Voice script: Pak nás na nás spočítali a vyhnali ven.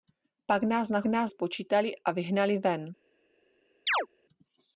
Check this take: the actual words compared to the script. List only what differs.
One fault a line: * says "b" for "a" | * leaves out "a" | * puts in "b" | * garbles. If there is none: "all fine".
all fine